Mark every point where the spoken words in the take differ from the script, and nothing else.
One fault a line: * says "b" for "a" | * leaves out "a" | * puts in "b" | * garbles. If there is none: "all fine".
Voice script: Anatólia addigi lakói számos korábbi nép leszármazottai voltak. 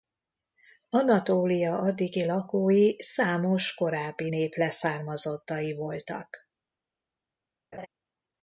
all fine